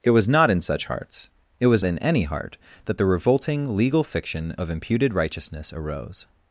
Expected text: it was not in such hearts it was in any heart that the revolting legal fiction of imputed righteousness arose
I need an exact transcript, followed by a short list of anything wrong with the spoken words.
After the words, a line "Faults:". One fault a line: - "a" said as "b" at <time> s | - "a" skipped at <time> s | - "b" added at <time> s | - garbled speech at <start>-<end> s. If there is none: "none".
it was not in such hearts it was in any heart that the revolting legal fiction of imputed righteousness arose
Faults:
none